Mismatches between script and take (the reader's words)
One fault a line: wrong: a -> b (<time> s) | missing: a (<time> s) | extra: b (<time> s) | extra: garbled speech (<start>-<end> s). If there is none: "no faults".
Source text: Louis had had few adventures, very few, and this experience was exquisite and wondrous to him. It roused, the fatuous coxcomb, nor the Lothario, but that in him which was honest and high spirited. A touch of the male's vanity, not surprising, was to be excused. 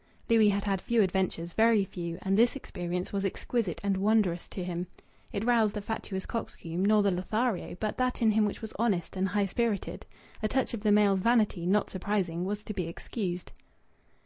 no faults